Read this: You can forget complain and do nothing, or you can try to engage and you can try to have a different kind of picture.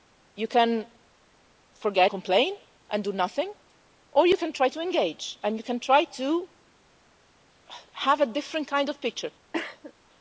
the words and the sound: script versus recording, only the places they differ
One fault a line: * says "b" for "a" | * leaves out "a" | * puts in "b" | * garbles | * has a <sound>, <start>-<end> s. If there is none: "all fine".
* has a cough, 9.5-9.9 s